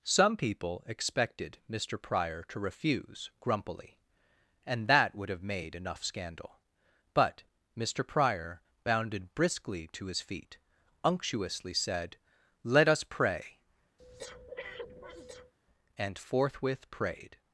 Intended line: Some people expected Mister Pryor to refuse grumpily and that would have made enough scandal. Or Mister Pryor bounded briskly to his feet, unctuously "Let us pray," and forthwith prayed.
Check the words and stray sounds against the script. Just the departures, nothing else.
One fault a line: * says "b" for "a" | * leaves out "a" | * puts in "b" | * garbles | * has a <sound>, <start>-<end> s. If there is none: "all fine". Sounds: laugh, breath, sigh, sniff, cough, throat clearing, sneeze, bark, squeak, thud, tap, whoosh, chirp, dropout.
* says "But" for "Or"
* puts in "said"
* has a breath, 14.0-15.5 s